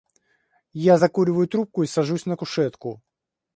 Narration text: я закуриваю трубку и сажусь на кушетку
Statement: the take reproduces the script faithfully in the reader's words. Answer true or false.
true